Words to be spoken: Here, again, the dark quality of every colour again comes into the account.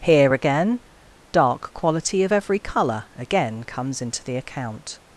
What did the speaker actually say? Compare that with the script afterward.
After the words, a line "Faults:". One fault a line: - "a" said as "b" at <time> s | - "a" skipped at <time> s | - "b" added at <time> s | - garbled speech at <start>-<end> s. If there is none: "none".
Here, again, dark quality of every colour again comes into the account.
Faults:
- "the" skipped at 0.8 s